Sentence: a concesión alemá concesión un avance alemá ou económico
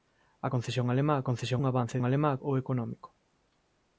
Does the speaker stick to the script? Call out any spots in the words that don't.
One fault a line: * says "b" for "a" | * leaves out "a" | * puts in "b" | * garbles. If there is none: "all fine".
all fine